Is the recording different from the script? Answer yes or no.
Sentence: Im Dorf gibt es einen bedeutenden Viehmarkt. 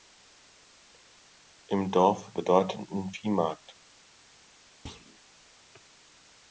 yes